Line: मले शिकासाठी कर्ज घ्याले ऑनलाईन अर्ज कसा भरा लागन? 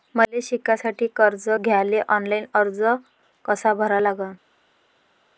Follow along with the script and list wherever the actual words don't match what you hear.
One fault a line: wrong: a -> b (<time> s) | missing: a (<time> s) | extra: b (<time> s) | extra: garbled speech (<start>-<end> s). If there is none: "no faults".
no faults